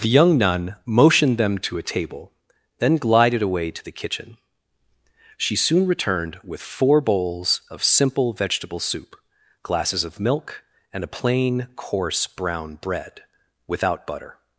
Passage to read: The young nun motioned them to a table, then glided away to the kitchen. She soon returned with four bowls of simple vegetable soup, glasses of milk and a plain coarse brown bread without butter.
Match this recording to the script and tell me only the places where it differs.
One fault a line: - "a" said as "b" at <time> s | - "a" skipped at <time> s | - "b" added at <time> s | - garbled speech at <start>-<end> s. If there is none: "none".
none